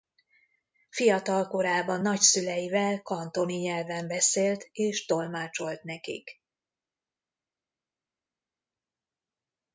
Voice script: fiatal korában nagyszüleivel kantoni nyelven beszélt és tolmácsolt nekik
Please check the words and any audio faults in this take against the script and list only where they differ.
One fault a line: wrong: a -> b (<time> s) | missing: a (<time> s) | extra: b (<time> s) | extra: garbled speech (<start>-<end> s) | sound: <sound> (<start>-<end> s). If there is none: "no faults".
no faults